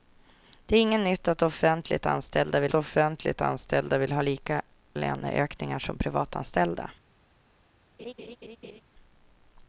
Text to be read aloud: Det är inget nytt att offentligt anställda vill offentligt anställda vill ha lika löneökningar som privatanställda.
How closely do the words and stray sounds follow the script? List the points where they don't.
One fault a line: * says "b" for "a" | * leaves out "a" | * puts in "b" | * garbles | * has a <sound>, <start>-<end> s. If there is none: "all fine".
* has a laugh, 8.0-8.8 s